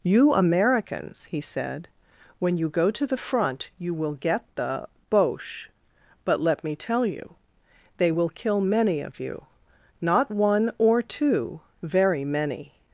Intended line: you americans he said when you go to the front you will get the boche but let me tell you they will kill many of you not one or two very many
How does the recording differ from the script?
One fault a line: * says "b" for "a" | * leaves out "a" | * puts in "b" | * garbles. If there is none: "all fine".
all fine